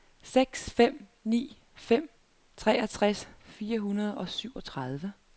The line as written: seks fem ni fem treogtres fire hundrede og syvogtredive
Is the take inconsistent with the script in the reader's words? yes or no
no